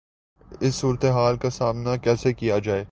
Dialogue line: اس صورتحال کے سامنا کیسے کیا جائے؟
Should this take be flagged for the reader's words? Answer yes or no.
yes